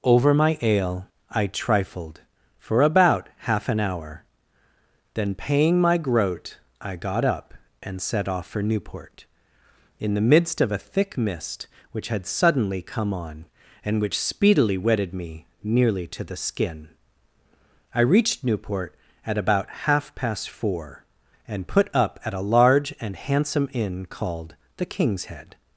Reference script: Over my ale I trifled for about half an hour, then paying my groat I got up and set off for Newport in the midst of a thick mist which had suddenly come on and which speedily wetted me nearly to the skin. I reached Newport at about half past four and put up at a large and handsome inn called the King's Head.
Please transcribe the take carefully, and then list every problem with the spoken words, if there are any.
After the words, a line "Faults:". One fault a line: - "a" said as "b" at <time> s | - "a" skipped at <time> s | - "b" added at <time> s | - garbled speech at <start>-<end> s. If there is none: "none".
Over my ale I trifled for about half an hour, then paying my groat I got up and set off for Newport in the midst of a thick mist which had suddenly come on and which speedily wetted me nearly to the skin. I reached Newport at about half past four and put up at a large and handsome inn called the King's Head.
Faults:
none